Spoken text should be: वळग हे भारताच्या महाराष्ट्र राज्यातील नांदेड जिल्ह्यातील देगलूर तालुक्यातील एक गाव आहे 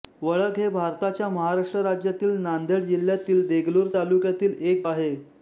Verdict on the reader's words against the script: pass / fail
fail